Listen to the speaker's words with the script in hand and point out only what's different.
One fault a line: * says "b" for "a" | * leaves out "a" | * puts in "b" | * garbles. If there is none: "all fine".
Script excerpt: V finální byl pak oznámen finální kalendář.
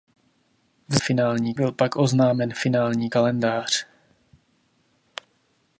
all fine